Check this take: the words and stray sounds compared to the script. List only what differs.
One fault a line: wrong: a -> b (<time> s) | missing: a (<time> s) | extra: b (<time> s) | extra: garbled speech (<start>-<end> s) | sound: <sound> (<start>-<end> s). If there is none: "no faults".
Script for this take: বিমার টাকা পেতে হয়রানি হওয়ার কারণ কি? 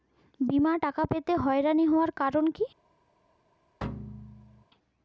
sound: thud (3.8-4.6 s)